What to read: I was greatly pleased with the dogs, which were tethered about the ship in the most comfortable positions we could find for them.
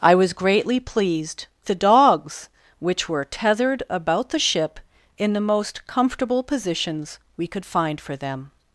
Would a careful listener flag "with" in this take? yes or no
yes